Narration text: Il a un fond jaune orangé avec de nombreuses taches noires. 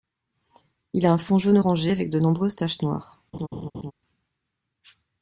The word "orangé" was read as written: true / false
true